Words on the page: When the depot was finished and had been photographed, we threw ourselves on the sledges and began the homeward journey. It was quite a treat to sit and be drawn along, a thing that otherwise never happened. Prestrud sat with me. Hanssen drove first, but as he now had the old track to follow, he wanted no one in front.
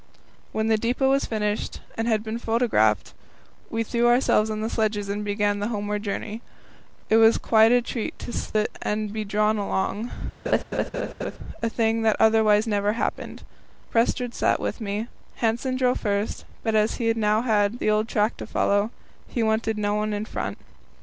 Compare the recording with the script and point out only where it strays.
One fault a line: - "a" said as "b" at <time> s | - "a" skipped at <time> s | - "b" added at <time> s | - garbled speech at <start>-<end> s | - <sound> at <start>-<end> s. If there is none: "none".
- laugh at 10.5-11.4 s